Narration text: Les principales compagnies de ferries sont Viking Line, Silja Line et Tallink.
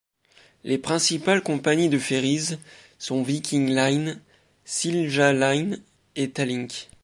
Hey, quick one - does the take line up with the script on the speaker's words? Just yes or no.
yes